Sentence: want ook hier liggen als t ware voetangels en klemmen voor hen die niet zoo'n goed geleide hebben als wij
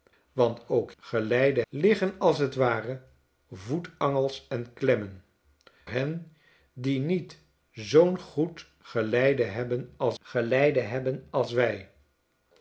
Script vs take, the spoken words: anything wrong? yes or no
yes